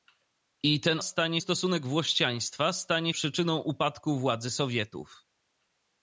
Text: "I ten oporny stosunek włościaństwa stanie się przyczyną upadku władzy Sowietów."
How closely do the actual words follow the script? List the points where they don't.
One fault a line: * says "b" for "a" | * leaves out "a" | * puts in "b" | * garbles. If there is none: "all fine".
* says "stanie" for "oporny"
* leaves out "się"